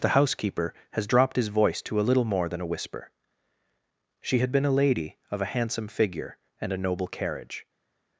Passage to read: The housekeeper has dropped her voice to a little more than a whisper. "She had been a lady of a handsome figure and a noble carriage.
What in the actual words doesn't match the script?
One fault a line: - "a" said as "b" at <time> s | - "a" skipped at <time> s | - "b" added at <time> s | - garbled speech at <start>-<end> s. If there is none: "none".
- "her" said as "his" at 1.4 s